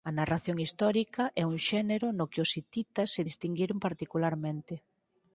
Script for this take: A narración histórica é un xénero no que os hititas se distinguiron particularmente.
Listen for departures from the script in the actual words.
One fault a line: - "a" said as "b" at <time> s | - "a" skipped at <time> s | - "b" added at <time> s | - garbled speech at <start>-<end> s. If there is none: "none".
none